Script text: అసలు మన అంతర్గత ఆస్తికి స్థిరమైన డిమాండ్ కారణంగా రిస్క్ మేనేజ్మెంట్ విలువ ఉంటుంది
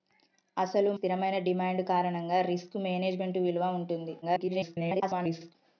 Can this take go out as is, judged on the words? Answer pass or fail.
fail